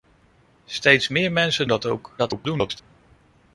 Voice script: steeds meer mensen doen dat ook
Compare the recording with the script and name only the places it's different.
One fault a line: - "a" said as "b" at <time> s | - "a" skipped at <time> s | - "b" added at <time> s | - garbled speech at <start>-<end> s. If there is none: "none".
- "doen" skipped at 1.7 s
- garbled speech at 2.2-2.8 s